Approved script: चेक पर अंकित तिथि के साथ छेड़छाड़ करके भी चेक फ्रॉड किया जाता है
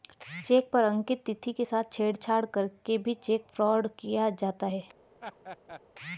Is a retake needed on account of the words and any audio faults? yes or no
yes